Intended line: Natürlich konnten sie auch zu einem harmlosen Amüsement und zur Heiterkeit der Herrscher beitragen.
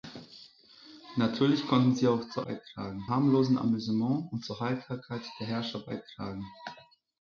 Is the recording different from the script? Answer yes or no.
yes